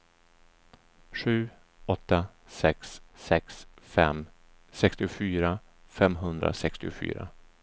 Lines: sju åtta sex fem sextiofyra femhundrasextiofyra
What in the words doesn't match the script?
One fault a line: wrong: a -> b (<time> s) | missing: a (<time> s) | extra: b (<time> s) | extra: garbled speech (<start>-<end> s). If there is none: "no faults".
extra: sex (3.1 s)